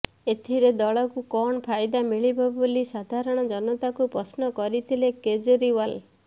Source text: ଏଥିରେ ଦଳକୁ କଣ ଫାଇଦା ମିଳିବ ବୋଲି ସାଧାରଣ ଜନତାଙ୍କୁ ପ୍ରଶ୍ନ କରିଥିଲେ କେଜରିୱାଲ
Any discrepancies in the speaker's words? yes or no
no